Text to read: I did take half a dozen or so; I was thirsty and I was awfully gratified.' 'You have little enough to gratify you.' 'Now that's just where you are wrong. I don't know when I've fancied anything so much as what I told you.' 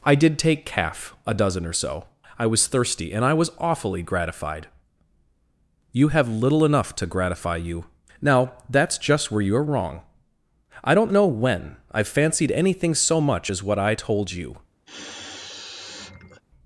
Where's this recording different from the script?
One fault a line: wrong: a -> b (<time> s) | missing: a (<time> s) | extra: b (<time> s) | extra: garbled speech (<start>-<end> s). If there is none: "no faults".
wrong: half -> calf (0.7 s)